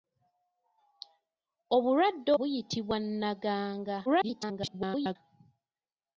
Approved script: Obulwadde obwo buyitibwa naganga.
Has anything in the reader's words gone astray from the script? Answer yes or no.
yes